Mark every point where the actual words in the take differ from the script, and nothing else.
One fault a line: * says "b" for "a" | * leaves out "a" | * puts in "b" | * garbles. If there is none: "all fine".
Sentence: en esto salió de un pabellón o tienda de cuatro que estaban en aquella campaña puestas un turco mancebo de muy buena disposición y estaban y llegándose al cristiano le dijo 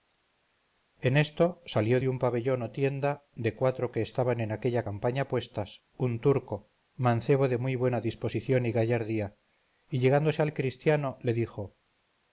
* says "gallardía" for "estaban"